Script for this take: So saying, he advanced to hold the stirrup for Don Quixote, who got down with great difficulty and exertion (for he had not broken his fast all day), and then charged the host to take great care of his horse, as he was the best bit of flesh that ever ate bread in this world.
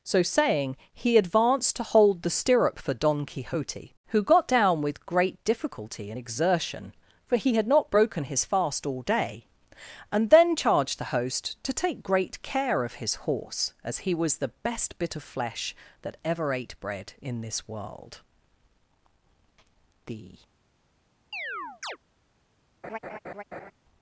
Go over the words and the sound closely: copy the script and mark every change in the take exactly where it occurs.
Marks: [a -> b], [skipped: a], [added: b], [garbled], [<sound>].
So saying, he advanced to hold the stirrup for Don Quixote, who got down with great difficulty and exertion (for he had not broken his fast all day), and then charged the host to take great care of his horse, as he was the best bit of flesh that ever ate bread in this world. [added: The] [chirp] [laugh]